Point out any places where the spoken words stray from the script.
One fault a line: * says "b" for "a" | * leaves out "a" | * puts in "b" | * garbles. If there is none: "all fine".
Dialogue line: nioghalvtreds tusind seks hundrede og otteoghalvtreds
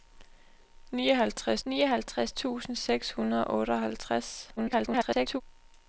* puts in "nioghalvtreds"
* garbles